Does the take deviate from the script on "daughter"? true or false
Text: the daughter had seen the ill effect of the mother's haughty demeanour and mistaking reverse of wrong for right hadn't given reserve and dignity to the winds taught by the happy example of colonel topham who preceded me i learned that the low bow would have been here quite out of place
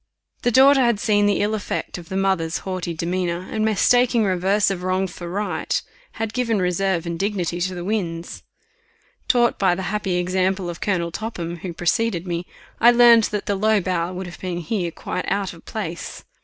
false